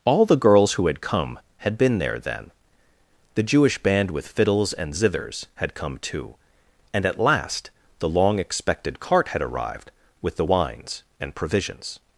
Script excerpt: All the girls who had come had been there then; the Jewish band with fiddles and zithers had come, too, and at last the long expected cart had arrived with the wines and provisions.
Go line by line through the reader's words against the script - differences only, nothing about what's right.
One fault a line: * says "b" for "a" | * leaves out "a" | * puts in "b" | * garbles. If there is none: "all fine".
all fine